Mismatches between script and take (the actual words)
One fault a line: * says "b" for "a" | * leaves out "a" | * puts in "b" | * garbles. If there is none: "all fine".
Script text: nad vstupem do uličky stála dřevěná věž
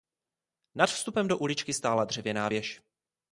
all fine